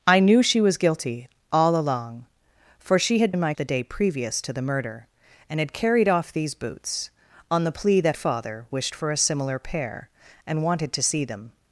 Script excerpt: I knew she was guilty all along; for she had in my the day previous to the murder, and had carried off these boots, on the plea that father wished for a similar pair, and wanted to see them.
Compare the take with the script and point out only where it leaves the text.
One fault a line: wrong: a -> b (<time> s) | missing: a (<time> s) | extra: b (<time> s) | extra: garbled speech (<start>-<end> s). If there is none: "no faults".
no faults